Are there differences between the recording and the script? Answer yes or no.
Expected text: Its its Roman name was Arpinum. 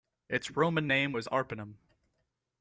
yes